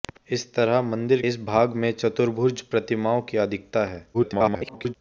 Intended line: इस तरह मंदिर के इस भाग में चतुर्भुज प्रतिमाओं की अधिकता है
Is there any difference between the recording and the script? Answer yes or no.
yes